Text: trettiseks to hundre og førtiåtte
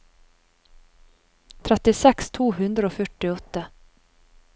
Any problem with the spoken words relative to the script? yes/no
no